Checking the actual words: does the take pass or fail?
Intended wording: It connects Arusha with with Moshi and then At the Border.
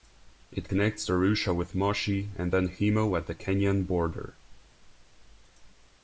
fail